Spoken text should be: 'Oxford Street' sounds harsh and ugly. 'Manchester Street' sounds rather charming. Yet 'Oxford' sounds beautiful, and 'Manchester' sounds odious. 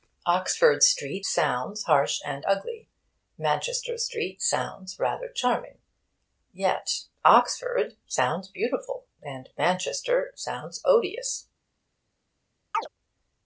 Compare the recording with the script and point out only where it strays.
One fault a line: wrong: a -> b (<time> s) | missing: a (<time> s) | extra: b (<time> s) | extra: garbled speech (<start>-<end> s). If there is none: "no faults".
no faults